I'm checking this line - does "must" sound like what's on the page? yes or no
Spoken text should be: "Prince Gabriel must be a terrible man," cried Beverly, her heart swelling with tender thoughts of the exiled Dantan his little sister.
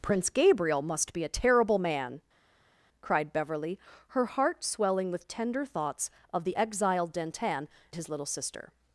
yes